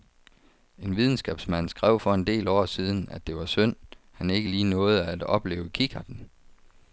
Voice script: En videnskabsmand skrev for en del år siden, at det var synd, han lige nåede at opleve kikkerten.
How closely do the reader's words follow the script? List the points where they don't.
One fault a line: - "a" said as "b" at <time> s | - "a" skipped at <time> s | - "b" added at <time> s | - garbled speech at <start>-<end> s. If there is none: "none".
- "ikke" added at 4.3 s